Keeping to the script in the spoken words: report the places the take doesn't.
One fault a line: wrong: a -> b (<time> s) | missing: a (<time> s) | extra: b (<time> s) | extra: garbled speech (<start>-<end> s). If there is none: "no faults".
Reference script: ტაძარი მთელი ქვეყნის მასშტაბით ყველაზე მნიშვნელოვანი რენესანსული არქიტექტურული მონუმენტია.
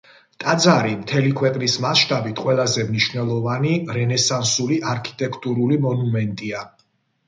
no faults